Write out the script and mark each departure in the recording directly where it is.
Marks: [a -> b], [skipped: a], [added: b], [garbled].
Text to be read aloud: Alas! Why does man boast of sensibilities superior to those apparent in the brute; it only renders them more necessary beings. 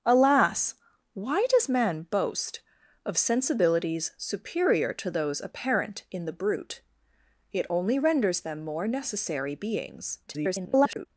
Alas! Why does man boast of sensibilities superior to those apparent in the brute; it only renders them more necessary beings. [garbled]